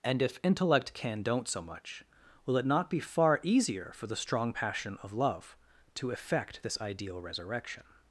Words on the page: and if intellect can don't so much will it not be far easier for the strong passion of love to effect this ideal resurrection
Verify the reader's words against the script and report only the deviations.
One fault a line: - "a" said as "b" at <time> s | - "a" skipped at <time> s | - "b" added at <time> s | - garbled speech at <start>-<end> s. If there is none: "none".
none